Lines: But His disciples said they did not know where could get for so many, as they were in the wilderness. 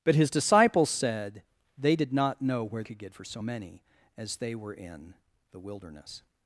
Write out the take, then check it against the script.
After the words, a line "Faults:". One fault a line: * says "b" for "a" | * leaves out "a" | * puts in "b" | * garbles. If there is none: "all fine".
But His disciples said they did not know where could get for so many, as they were in the wilderness.
Faults:
all fine